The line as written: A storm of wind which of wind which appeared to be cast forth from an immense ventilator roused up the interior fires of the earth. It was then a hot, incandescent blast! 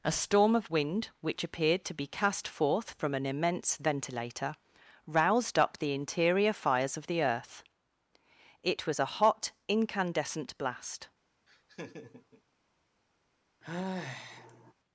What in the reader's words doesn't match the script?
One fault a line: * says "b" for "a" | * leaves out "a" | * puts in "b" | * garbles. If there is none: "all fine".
* leaves out "of wind which"
* leaves out "then"